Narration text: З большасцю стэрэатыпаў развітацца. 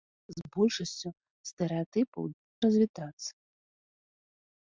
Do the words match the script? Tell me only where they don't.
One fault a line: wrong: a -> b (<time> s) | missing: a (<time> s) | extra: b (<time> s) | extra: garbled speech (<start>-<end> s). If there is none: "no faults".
no faults